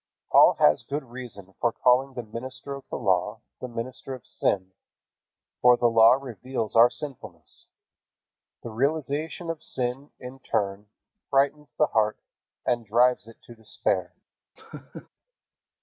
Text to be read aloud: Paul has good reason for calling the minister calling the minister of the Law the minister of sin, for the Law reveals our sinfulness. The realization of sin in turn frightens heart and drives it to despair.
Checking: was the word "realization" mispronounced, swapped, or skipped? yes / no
no